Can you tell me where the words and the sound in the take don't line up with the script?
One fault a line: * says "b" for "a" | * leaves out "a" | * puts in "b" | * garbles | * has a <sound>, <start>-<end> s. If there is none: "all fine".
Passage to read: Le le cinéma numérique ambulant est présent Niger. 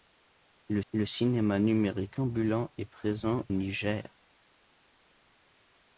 all fine